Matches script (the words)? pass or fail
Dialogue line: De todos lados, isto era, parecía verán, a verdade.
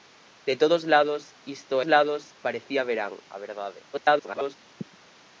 fail